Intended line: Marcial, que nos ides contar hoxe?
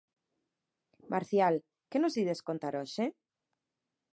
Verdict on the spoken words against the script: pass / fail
pass